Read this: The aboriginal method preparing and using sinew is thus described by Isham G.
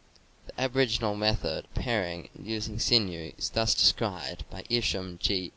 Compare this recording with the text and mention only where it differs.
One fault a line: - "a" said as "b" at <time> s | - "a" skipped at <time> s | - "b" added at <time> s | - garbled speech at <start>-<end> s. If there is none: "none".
none